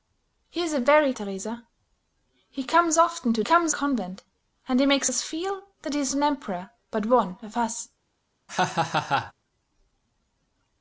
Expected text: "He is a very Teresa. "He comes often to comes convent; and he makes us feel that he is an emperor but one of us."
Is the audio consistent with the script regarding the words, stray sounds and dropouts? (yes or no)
no